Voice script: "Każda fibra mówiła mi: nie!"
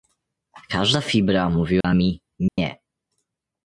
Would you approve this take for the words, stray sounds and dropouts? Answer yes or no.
no